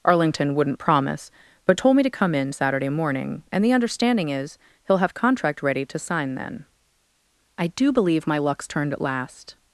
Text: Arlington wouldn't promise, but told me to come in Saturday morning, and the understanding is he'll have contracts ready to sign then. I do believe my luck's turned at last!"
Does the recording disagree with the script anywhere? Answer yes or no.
yes